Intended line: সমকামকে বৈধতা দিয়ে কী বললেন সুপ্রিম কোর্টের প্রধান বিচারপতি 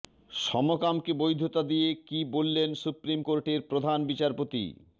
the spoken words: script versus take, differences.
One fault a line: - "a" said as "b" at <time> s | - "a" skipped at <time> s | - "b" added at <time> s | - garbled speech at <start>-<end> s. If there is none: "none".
none